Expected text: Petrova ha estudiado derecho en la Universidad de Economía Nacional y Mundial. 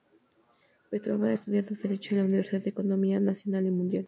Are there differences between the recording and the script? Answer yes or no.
no